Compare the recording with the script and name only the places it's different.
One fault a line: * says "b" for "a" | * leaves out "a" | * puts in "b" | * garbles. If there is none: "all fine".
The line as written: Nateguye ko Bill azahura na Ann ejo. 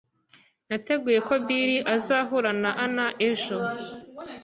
all fine